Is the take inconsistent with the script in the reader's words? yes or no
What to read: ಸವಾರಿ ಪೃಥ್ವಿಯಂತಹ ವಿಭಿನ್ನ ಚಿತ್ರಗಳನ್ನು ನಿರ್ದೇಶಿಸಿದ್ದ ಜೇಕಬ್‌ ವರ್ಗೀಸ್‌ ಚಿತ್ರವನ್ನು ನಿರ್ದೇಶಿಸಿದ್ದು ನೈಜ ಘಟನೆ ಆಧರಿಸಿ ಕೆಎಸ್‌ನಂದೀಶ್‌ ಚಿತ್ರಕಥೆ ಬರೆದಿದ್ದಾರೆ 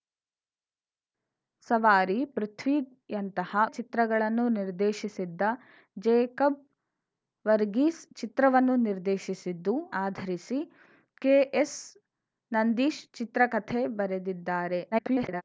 yes